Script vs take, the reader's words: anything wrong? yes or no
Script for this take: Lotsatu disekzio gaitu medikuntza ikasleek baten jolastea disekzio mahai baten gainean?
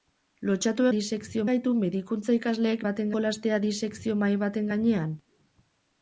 no